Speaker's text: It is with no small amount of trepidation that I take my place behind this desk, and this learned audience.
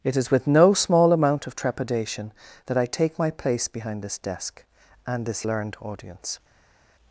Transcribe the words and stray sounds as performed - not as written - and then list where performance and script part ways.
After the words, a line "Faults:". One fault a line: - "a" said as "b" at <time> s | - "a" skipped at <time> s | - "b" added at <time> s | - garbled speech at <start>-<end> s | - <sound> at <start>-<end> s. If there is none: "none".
It is with no small amount of trepidation that I take my place behind this desk, and this learned audience.
Faults:
none